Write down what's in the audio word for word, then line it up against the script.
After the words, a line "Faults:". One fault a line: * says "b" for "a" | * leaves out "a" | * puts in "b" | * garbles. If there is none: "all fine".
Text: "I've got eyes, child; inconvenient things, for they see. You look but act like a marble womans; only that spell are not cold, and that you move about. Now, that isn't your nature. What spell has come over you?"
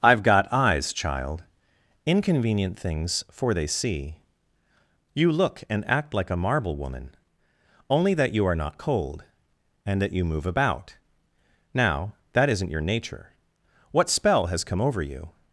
"I've got eyes, child; inconvenient things, for they see. You look and act like a marble woman; only that you are not cold, and that you move about. Now, that isn't your nature. What spell has come over you?"
Faults:
* says "and" for "but"
* says "woman" for "womans"
* says "you" for "spell"